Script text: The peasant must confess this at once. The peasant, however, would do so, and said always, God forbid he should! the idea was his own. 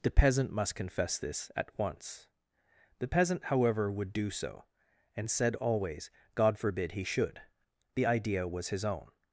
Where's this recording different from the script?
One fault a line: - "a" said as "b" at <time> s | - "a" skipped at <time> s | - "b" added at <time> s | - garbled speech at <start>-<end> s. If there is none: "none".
none